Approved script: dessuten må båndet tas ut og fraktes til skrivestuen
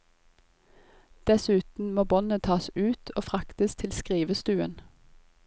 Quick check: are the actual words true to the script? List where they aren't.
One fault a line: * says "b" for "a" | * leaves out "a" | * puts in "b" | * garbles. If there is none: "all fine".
all fine